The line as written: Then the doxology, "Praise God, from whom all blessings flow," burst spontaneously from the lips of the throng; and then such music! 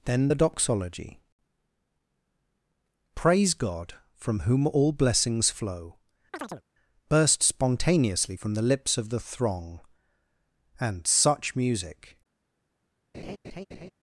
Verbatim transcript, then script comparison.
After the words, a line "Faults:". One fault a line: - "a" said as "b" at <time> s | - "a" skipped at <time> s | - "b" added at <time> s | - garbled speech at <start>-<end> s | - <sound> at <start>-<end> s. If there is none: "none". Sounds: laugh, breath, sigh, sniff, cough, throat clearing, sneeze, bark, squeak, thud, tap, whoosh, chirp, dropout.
Then the doxology, "Praise God, from whom all blessings flow," burst spontaneously from the lips of the throng; and such music!
Faults:
- chirp at 6.3-6.6 s
- "then" skipped at 11.1 s
- laugh at 13.1-13.9 s